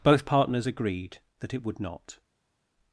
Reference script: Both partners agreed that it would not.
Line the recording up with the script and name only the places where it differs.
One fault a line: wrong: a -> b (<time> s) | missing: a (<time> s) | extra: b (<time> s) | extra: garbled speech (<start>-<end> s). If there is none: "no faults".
no faults